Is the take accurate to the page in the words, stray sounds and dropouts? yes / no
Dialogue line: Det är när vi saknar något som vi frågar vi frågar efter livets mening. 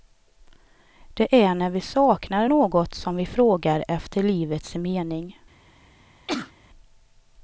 no